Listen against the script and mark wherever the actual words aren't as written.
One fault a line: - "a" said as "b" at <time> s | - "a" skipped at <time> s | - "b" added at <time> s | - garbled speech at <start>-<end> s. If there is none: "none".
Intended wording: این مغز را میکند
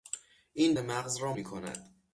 none